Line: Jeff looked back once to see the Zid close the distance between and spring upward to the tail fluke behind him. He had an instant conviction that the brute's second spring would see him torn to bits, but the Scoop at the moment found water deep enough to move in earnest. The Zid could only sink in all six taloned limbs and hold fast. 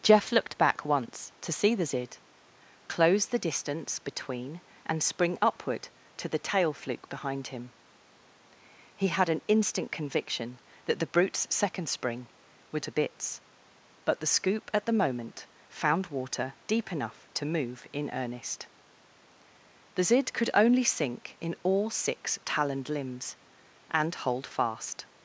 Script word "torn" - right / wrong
wrong